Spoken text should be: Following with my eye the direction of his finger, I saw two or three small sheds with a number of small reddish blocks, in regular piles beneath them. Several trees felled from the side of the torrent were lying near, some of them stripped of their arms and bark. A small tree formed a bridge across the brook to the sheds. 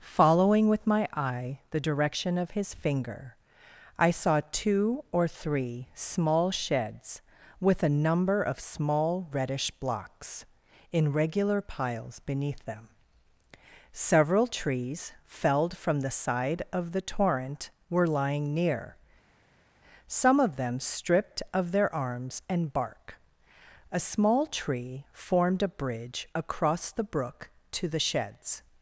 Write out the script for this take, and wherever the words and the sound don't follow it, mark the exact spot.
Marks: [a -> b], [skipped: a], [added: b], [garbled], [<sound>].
Following with my eye the direction of his finger, I saw two or three small sheds with a number of small reddish blocks, in regular piles beneath them. Several trees felled from the side of the torrent were lying near, some of them stripped of their arms and bark. A small tree formed a bridge across the brook to the sheds.